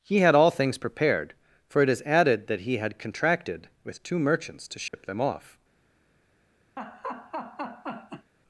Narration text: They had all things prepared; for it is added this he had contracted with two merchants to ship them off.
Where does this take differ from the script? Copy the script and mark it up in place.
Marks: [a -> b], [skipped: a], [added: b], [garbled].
[They -> He] had all things prepared; for it is added [this -> that] he had contracted with two merchants to ship them off.